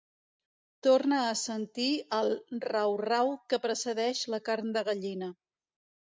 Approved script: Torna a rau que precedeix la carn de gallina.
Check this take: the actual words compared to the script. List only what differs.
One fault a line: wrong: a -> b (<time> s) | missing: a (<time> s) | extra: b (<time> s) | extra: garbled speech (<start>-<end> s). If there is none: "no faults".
extra: sentir el rau (1.4 s)